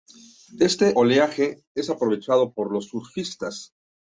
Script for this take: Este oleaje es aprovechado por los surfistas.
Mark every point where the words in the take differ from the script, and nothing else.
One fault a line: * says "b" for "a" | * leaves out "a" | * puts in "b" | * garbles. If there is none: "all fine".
all fine